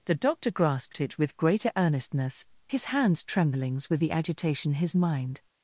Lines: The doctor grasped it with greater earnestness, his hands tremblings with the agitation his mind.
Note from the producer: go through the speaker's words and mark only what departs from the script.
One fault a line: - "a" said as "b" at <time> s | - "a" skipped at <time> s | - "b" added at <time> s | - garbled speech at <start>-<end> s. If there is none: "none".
none